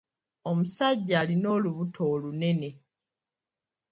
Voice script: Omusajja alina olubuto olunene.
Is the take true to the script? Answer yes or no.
yes